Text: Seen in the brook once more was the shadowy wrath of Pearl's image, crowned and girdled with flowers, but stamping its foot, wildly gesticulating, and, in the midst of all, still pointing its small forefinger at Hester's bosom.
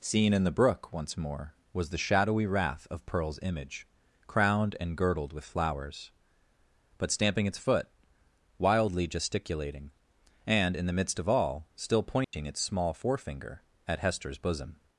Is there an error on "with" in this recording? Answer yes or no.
no